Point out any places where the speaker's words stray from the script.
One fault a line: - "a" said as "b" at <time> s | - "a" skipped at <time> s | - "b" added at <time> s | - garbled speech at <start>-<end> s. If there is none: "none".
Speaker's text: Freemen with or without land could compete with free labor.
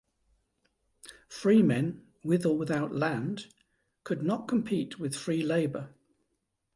- "not" added at 4.2 s